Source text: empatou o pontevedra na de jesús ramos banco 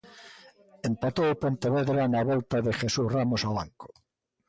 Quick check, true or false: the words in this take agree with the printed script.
false